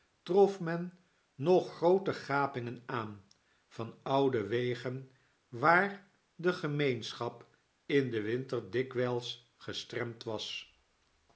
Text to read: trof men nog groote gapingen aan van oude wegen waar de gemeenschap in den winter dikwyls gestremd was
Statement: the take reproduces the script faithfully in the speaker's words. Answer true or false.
true